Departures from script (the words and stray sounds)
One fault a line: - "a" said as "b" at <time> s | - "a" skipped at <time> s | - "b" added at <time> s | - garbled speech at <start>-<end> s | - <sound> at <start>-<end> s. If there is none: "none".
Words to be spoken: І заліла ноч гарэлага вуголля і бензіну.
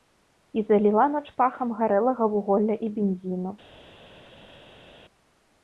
- "пахам" added at 1.4 s